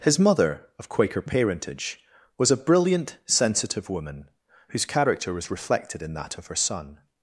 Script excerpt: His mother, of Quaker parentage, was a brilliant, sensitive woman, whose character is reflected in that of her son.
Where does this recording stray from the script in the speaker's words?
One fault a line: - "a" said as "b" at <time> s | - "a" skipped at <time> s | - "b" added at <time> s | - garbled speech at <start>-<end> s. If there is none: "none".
- "is" said as "was" at 5.3 s